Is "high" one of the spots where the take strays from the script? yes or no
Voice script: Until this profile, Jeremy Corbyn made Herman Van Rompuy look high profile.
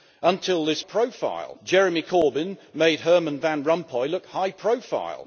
no